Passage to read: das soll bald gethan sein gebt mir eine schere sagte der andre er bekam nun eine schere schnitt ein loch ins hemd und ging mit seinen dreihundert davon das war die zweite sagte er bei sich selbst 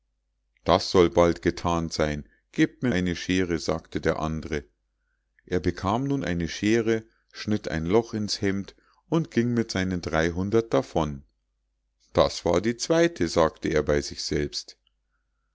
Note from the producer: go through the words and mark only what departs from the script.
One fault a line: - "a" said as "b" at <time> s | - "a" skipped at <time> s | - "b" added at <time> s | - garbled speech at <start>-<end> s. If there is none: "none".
none